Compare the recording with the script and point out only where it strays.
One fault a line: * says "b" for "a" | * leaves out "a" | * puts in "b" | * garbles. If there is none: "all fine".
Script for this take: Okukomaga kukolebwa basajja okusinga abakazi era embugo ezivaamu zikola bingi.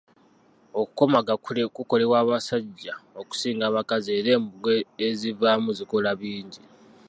all fine